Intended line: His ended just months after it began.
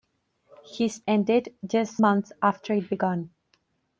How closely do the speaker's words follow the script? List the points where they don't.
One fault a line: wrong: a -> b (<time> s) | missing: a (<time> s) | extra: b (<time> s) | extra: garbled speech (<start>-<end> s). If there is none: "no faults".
no faults